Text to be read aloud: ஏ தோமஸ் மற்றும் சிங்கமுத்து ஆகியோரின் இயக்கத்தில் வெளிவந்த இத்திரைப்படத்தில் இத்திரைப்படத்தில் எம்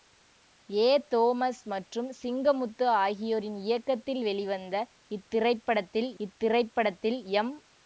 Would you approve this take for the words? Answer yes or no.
yes